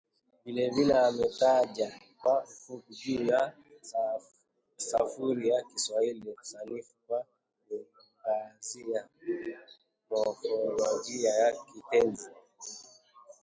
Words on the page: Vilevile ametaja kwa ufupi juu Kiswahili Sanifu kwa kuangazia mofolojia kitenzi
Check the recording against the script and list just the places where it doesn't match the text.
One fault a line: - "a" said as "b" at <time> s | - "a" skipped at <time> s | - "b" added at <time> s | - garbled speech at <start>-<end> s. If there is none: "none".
- "ya sarufi ya" added at 3.2 s
- "ya" added at 11.3 s